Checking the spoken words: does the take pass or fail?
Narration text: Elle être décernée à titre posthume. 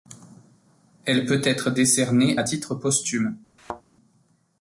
fail